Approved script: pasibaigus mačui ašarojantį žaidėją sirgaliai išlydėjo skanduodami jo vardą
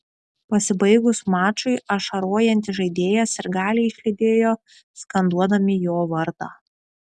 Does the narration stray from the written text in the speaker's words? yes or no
no